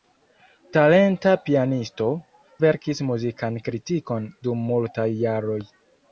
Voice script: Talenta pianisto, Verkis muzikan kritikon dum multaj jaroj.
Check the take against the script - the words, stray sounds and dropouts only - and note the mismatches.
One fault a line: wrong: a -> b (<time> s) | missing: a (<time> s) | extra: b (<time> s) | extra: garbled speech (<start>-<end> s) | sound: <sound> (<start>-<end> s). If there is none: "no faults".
no faults